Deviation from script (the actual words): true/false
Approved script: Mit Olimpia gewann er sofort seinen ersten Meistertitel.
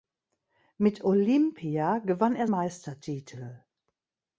true